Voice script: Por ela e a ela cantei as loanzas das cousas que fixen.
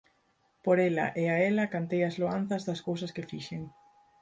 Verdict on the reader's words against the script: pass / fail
pass